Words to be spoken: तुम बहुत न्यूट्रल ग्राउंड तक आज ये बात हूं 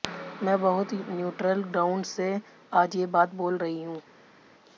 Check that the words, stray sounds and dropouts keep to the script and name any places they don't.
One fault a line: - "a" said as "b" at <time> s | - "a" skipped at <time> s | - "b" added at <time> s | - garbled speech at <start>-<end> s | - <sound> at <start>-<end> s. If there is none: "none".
- "तुम" said as "मैं" at 0.4 s
- "तक" said as "से" at 2.0 s
- "बोल रही" added at 3.4 s